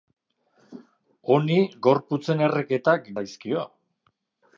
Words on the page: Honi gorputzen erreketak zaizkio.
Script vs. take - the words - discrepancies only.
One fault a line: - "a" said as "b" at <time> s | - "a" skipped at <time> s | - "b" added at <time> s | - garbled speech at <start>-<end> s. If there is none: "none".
none